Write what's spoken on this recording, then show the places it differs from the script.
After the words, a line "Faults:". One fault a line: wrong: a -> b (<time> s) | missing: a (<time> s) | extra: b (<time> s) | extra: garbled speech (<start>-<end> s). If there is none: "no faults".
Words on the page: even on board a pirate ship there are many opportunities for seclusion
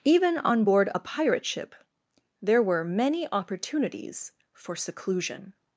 even on board a pirate ship there were many opportunities for seclusion
Faults:
wrong: are -> were (2.6 s)